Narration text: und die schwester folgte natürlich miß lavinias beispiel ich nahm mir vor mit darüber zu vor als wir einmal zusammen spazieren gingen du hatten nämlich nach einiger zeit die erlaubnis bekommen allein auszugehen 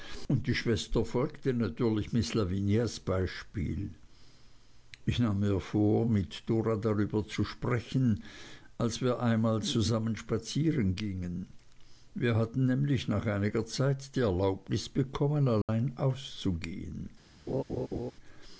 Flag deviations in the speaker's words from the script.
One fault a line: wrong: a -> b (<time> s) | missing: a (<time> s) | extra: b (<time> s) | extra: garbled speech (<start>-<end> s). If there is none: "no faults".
extra: dora (6.5 s)
wrong: vor -> sprechen (7.4 s)
wrong: du -> wir (12.1 s)